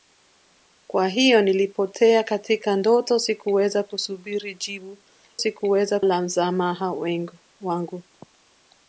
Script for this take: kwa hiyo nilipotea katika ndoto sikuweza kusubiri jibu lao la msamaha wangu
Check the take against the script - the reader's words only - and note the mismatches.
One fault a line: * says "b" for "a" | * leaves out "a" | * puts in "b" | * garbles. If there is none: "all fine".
* says "sikuweza" for "lao"